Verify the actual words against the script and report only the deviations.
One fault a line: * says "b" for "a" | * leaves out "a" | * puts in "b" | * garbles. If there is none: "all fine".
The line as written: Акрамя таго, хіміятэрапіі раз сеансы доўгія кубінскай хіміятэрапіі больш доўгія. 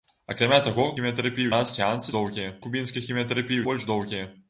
all fine